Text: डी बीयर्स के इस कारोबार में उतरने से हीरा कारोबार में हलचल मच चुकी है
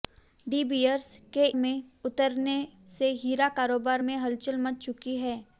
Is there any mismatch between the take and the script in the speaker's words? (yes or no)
yes